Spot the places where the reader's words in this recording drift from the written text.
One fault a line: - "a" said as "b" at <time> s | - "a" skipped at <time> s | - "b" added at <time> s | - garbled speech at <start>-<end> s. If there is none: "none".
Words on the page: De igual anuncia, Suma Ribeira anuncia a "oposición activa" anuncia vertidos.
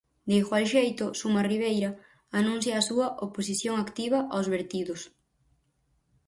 - "anuncia" said as "xeito" at 0.7 s
- "súa" added at 2.9 s
- "anuncia" said as "aos" at 4.3 s